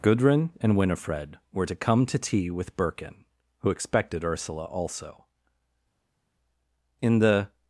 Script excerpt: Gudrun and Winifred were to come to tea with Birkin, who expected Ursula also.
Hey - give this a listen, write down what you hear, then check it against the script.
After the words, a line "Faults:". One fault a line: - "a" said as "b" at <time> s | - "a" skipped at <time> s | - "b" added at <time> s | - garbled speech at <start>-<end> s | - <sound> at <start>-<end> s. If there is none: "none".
Gudrun and Winifred were to come to tea with Birkin, who expected Ursula also. In the
Faults:
- "In the" added at 7.0 s